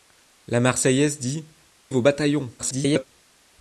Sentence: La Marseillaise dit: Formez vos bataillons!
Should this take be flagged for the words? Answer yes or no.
yes